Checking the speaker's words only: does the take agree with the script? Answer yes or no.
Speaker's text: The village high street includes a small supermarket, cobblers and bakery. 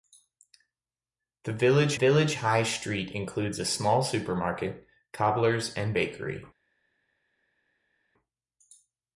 no